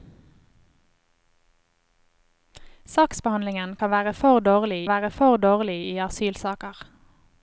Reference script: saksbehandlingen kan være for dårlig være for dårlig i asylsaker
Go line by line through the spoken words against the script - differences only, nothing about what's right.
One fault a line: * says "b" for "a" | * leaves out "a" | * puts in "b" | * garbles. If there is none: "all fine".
all fine